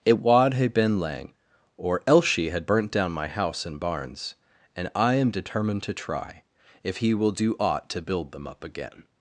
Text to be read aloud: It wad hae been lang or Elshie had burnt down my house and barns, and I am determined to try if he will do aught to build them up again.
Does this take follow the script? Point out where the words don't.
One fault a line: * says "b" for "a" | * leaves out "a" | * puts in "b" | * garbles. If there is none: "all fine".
all fine